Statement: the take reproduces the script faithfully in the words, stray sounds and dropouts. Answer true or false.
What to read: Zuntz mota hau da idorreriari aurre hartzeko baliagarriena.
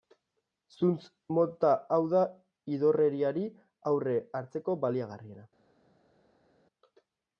true